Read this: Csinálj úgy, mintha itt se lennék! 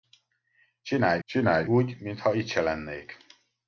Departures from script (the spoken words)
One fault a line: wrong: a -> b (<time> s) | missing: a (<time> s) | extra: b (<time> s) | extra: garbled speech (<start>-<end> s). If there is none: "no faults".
extra: csinálj (1.2 s)